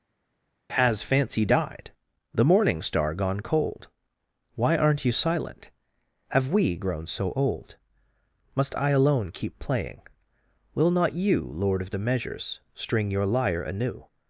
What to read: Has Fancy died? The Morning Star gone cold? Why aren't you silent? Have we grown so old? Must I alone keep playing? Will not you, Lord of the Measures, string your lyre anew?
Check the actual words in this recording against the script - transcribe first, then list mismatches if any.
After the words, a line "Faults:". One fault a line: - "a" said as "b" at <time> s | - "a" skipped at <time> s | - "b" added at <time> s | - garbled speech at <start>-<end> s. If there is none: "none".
Has Fancy died? The Morning Star gone cold? Why aren't you silent? Have we grown so old? Must I alone keep playing? Will not you, Lord of the Measures, string your lyre anew?
Faults:
none